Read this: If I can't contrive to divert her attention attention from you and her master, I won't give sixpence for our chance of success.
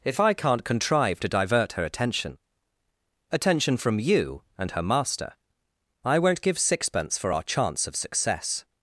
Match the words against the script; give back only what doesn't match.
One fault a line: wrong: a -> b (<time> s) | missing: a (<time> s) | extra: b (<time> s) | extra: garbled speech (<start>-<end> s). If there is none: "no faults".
no faults